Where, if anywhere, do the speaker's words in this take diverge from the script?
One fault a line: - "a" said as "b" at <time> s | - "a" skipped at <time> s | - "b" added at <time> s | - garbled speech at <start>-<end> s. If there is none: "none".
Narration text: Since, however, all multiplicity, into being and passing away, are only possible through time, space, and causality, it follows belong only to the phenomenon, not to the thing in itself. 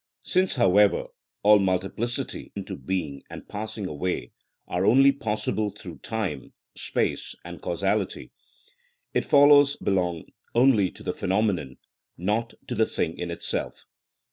none